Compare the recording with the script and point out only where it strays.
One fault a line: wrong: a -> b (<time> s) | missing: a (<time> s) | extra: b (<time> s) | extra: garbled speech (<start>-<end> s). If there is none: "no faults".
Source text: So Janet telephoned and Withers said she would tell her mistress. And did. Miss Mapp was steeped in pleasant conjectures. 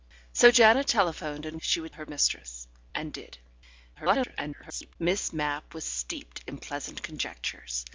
missing: Withers said (1.6 s)
missing: tell (1.9 s)
extra: garbled speech (3.9-5.0 s)